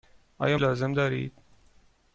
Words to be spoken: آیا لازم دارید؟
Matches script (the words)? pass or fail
pass